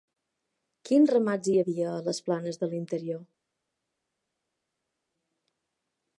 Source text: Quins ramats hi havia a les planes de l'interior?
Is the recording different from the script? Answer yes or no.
no